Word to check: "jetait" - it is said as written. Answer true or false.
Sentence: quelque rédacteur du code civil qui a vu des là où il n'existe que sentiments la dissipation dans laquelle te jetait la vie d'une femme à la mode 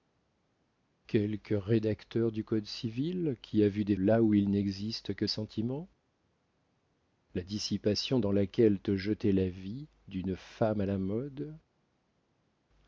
true